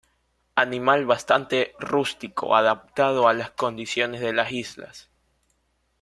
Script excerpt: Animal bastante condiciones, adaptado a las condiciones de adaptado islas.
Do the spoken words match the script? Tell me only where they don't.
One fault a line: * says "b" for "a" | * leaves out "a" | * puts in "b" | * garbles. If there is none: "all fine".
* says "rústico" for "condiciones"
* says "las" for "adaptado"